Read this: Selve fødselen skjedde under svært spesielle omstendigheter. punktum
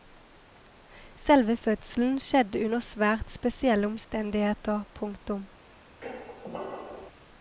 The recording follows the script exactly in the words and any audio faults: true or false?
false